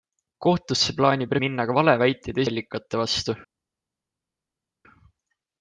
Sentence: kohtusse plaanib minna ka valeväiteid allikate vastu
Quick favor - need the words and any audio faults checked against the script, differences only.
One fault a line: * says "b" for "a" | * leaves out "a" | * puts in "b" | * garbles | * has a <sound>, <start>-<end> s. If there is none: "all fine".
all fine